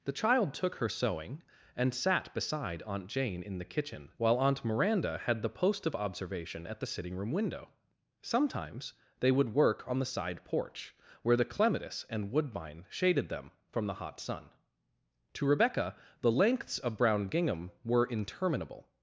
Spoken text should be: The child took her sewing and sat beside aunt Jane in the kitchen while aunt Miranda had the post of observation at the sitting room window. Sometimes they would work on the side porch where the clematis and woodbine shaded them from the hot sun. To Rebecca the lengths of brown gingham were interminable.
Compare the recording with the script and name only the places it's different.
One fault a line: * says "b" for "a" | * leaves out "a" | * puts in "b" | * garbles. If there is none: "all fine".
all fine